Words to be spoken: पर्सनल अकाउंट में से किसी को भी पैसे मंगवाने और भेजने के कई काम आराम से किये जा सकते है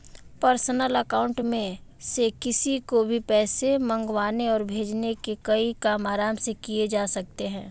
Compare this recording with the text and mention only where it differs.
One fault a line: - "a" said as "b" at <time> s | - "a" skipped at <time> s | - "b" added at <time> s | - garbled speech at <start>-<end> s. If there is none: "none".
none